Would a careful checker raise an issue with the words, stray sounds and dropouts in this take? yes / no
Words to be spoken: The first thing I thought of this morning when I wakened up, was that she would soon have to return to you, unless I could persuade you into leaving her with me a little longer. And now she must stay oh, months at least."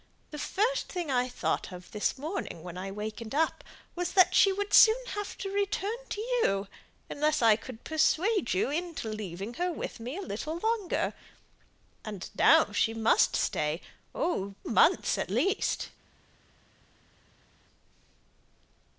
no